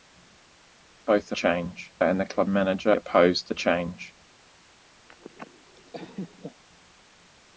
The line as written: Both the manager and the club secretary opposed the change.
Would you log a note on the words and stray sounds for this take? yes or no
yes